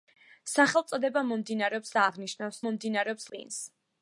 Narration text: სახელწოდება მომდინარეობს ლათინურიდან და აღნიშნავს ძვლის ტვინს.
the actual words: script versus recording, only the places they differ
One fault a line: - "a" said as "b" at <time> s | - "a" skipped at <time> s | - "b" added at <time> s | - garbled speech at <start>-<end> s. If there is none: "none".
- "ლათინურიდან" skipped at 1.9 s
- "ძვლის" said as "მომდინარეობს" at 2.7 s